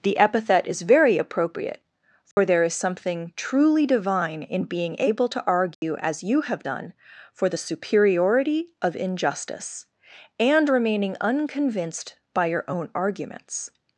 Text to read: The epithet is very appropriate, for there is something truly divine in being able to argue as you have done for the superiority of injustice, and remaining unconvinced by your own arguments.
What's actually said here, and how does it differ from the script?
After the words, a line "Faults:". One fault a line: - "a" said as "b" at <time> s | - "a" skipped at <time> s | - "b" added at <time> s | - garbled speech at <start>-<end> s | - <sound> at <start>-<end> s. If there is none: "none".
The epithet is very appropriate, for there is something truly divine in being able to argue as you have done for the superiority of injustice, and remaining unconvinced by your own arguments.
Faults:
- dropout at 2.3-2.4 s
- dropout at 5.7-5.8 s